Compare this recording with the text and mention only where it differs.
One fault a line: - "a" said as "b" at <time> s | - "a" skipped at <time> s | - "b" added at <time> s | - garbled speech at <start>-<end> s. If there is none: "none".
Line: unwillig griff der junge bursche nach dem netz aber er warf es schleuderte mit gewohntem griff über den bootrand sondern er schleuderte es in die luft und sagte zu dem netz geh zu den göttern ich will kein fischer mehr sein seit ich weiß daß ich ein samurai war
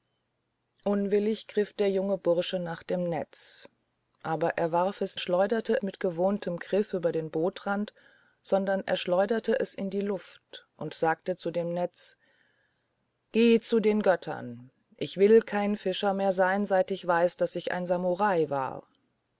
none